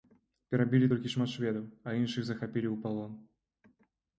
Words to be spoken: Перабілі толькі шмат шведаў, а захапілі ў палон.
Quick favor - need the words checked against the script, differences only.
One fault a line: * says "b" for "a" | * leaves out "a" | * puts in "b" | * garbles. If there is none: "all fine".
* puts in "іншых"